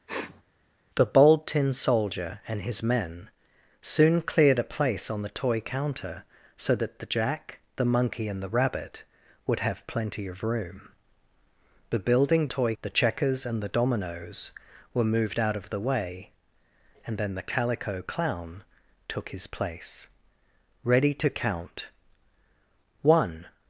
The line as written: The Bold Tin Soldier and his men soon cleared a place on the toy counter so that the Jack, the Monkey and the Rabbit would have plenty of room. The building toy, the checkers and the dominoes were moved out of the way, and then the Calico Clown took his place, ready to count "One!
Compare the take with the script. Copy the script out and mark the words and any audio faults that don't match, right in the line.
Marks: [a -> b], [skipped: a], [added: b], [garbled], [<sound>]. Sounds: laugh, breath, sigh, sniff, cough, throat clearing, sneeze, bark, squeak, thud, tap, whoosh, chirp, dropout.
[sniff] The Bold Tin Soldier and his men soon cleared a place on the toy counter so that the Jack, the Monkey and the Rabbit would have plenty of room. The building toy, the checkers and the dominoes were moved out of the way, and then the Calico Clown took his place, ready to count "One!